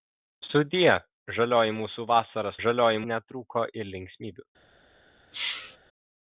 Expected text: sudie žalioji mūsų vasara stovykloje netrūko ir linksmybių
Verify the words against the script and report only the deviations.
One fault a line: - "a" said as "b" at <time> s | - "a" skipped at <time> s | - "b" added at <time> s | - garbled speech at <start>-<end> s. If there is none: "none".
- "stovykloje" said as "žalioji" at 2.7 s